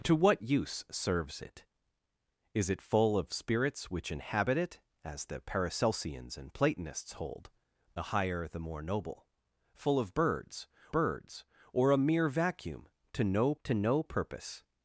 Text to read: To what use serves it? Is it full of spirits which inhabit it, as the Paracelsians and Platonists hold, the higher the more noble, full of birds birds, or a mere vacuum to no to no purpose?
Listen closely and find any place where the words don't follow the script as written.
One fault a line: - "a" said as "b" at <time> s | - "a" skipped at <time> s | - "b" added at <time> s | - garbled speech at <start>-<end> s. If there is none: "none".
none